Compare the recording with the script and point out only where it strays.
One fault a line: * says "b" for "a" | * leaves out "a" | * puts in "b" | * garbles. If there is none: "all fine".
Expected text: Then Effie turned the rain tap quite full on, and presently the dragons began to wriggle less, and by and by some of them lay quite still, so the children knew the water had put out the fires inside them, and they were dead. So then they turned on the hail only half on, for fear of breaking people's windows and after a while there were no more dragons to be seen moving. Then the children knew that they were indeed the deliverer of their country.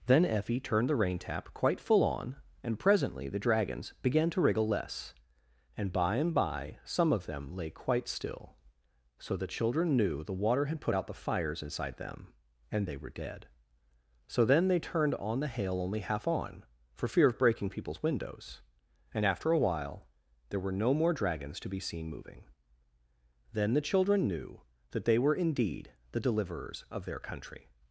* says "deliverers" for "deliverer"